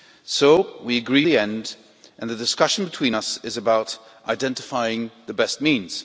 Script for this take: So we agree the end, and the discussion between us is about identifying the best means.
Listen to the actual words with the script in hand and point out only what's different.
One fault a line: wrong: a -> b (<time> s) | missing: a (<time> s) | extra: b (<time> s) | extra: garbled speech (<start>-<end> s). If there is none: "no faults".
no faults